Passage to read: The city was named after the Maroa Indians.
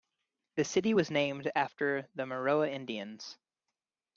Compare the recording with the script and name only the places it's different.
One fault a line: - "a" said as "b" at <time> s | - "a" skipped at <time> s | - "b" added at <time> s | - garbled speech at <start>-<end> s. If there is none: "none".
none